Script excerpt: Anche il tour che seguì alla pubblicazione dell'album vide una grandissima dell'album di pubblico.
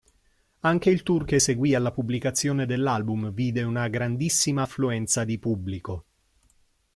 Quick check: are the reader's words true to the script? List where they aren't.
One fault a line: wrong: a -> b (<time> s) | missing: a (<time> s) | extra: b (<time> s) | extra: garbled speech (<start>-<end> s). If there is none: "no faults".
wrong: dell'album -> affluenza (4.6 s)